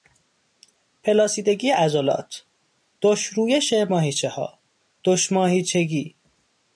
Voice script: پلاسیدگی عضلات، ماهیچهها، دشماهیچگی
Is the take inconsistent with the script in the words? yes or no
yes